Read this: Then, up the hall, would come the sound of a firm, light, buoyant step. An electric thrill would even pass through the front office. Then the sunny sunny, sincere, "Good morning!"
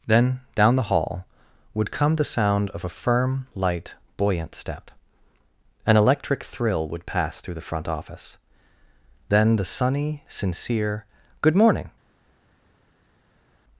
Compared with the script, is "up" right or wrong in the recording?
wrong